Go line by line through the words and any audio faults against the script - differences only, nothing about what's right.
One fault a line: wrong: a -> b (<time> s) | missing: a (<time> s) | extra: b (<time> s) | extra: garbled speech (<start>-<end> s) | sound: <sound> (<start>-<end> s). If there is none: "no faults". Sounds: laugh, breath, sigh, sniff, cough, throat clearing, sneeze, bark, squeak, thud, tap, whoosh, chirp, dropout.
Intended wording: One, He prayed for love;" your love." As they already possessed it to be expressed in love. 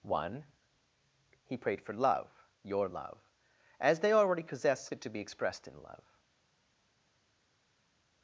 no faults